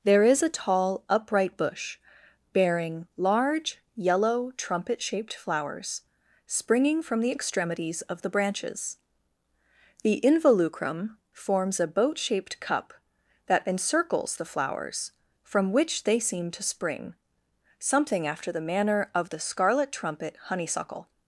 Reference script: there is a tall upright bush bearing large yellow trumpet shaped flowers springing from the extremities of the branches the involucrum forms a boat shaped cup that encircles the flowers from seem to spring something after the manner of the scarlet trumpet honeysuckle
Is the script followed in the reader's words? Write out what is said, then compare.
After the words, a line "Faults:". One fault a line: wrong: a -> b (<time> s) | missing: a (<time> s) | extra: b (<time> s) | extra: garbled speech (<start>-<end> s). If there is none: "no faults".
there is a tall upright bush bearing large yellow trumpet shaped flowers springing from the extremities of the branches the involucrum forms a boat shaped cup that encircles the flowers from which they seem to spring something after the manner of the scarlet trumpet honeysuckle
Faults:
extra: which they (15.7 s)